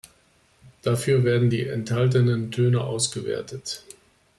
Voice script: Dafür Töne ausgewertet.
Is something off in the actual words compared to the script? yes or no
yes